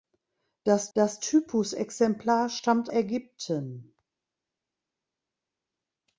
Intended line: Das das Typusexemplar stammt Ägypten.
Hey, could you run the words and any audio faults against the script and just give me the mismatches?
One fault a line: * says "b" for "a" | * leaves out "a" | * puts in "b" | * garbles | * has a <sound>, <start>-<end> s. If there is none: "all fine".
all fine